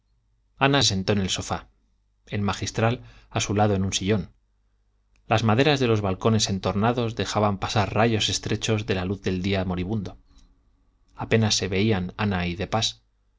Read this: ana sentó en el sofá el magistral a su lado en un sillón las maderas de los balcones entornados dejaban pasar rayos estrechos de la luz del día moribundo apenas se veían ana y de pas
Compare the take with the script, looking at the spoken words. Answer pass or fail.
pass